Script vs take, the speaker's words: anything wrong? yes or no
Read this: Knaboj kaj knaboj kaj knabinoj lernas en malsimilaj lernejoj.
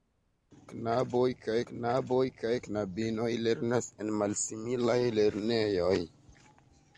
no